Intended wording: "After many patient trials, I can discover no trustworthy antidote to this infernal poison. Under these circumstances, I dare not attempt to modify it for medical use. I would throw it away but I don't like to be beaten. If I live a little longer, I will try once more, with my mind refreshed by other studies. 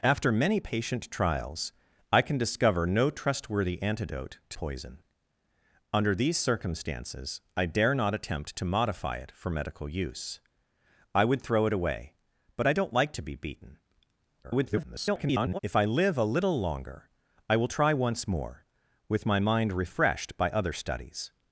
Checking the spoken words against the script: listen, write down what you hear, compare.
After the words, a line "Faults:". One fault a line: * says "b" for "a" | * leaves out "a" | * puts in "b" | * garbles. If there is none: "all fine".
"After many patient trials, I can discover no trustworthy antidote to poison. Under these circumstances, I dare not attempt to modify it for medical use. I would throw it away but I don't like to be beaten. [garbled] If I live a little longer, I will try once more, with my mind refreshed by other studies.
Faults:
* leaves out "this infernal"
* garbles